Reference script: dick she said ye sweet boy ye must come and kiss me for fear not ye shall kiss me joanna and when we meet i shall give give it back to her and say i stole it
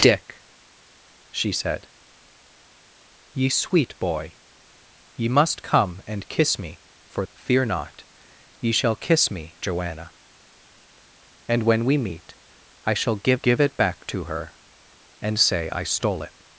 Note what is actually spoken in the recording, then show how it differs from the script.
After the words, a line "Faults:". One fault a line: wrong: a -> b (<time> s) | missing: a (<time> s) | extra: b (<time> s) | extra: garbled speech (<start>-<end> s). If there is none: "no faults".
dick she said ye sweet boy ye must come and kiss me for fear not ye shall kiss me joanna and when we meet i shall give give it back to her and say i stole it
Faults:
no faults